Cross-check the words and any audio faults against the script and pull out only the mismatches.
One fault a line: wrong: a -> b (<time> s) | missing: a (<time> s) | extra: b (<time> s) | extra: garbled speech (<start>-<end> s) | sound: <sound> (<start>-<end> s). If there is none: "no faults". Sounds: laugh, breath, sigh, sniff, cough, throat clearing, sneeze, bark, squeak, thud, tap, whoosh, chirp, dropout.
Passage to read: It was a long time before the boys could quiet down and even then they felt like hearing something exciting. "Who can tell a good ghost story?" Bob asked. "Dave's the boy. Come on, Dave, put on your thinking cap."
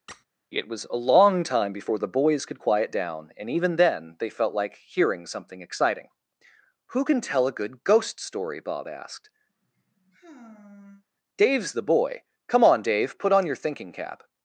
sound: squeak (0.1-0.2 s)
sound: sigh (9.5-11.0 s)